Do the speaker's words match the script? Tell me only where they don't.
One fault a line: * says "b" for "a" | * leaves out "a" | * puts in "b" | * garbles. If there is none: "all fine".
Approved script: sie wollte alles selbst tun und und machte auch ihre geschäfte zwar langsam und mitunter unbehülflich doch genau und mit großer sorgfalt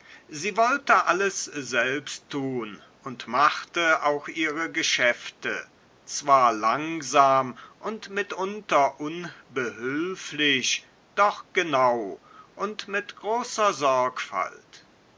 * leaves out "und"